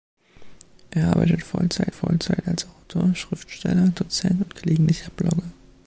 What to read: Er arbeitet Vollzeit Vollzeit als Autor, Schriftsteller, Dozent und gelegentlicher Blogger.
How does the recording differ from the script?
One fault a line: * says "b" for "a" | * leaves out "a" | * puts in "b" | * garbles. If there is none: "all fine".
all fine